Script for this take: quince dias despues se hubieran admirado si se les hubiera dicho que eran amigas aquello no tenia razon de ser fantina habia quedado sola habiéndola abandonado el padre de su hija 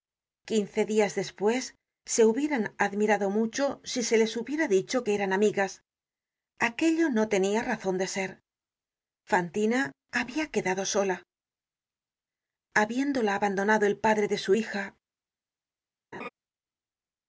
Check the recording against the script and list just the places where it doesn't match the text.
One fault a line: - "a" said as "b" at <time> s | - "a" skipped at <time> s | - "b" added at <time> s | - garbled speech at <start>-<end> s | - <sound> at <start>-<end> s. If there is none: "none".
- "mucho" added at 3.3 s
- laugh at 16.1-16.3 s